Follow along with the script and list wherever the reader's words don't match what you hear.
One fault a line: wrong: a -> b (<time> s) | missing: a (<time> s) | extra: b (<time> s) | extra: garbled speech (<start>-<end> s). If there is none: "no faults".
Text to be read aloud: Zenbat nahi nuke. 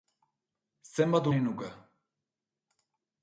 no faults